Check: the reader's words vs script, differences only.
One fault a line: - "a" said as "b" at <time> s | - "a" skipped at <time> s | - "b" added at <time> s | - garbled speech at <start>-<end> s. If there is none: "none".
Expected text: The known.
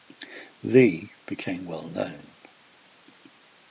- "became well" added at 1.3 s